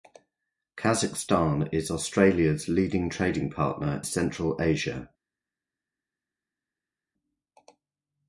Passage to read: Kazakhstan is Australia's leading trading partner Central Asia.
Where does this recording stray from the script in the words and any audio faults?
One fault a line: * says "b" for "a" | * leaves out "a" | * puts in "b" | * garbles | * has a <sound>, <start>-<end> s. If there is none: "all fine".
all fine